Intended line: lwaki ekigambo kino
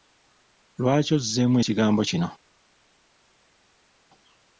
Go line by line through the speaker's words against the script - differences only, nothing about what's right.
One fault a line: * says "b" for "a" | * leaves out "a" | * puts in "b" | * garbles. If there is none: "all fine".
* puts in "ozzeemu"